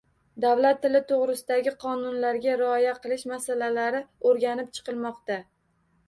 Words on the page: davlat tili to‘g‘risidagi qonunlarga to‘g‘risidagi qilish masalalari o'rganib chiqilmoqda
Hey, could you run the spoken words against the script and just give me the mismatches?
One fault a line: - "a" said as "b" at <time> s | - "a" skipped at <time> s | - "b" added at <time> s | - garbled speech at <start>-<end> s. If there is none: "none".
- "to‘g‘risidagi" said as "rioya" at 2.6 s